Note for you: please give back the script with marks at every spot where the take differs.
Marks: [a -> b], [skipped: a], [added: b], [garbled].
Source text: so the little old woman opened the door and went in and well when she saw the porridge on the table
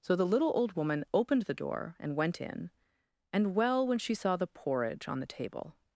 so the little old woman opened the door and went in and well when she saw the porridge on the table